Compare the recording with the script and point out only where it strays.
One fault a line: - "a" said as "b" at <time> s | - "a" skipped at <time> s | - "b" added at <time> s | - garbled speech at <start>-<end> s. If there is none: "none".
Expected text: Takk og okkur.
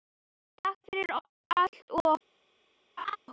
- "fyrir allt" added at 0.9 s